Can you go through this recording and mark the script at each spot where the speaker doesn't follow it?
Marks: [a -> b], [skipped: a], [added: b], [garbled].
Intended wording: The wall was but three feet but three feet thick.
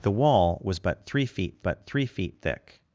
The wall was but three feet but three feet thick.